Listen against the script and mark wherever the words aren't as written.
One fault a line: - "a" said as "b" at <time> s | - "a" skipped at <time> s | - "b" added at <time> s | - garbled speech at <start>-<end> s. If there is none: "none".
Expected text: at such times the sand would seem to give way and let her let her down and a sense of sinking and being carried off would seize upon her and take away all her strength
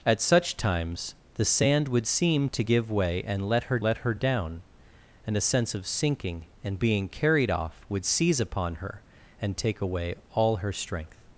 none